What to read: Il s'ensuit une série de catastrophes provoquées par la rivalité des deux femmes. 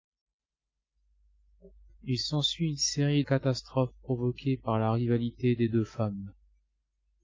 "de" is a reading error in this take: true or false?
true